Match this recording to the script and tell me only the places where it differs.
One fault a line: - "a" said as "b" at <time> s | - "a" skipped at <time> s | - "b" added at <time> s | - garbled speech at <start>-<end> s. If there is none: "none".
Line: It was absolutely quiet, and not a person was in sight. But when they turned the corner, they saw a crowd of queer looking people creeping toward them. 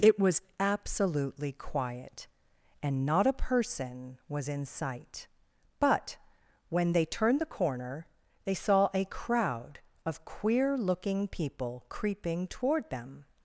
none